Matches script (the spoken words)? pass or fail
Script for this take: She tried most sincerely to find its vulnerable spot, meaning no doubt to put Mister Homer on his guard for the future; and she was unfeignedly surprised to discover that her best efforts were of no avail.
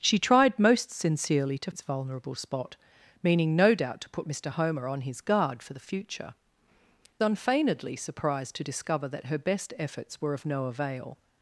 fail